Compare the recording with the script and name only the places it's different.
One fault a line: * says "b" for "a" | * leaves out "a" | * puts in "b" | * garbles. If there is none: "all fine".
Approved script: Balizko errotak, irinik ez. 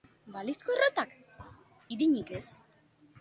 all fine